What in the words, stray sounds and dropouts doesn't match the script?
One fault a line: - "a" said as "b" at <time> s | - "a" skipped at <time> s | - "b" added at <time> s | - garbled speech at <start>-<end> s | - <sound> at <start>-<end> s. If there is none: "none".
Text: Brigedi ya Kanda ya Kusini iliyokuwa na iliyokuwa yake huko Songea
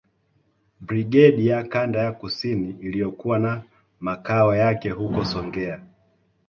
- "iliyokuwa" said as "makao" at 4.0 s